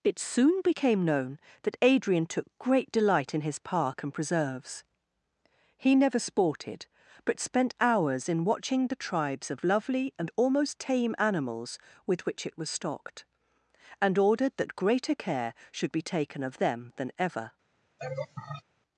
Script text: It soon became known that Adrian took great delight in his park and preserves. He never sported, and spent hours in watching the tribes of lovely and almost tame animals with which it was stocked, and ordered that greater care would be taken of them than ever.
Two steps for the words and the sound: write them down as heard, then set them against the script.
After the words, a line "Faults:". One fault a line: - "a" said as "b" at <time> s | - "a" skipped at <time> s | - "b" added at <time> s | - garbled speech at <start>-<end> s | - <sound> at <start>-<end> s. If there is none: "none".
It soon became known that Adrian took great delight in his park and preserves. He never sported, but spent hours in watching the tribes of lovely and almost tame animals with which it was stocked, and ordered that greater care should be taken of them than ever.
Faults:
- "and" said as "but" at 7.3 s
- "would" said as "should" at 15.7 s
- laugh at 18.0-18.6 s